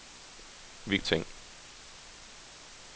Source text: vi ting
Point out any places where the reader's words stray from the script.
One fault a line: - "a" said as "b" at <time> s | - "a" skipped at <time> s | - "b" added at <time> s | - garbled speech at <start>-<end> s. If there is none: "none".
none